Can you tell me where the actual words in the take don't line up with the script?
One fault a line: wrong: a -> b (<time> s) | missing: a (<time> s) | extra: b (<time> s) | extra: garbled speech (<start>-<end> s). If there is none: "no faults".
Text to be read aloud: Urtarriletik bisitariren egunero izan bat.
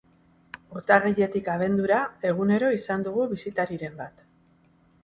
wrong: bisitariren -> abendura (1.6 s)
extra: dugu bisitariren (3.1 s)